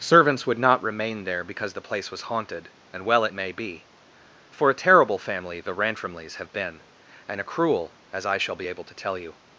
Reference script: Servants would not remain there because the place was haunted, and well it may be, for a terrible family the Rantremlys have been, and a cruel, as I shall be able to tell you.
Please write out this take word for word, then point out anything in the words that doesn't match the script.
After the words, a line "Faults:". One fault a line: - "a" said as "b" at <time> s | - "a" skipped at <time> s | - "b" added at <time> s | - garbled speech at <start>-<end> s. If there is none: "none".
Servants would not remain there because the place was haunted, and well it may be, for a terrible family the Rantremlys have been, and a cruel, as I shall be able to tell you.
Faults:
none